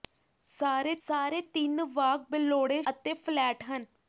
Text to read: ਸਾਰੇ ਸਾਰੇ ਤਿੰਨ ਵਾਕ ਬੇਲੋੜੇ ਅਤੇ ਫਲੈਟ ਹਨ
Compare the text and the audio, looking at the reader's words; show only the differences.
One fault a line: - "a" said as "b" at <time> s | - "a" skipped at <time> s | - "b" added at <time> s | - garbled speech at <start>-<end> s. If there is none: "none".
none